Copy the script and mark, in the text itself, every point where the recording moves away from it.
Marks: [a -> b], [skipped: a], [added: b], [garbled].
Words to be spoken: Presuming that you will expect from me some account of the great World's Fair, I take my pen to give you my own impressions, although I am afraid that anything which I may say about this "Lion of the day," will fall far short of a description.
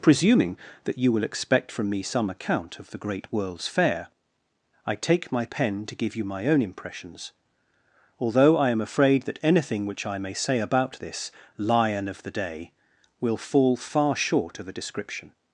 Presuming that you will expect from me some account of the great World's Fair, I take my pen to give you my own impressions, although I am afraid that anything which I may say about this "Lion of the day," will fall far short of a description.